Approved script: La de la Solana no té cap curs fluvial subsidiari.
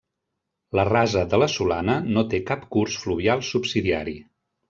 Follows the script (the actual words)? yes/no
no